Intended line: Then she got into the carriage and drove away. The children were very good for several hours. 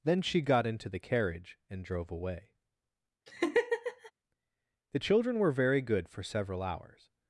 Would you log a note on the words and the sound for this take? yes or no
yes